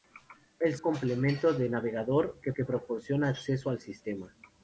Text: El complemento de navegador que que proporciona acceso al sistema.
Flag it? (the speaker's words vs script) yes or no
no